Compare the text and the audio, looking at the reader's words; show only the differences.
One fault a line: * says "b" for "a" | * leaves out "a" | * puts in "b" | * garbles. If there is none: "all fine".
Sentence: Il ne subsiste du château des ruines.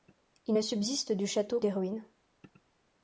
all fine